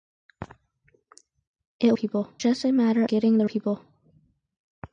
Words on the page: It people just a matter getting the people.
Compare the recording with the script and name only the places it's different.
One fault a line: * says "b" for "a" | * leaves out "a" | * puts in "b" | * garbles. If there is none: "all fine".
all fine